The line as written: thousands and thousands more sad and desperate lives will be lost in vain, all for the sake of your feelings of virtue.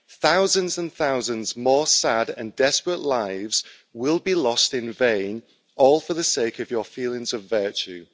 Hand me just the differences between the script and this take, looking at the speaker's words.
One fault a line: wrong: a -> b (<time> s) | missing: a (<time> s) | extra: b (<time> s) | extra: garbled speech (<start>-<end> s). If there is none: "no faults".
no faults